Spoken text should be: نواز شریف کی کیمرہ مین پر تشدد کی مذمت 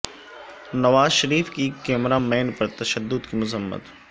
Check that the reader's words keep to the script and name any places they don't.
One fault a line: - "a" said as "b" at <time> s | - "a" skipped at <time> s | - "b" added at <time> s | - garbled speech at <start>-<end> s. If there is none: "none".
none